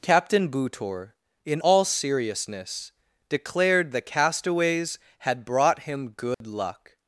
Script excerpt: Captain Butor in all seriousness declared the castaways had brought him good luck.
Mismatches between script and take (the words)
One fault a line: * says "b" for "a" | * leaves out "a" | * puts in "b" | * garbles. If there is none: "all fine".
all fine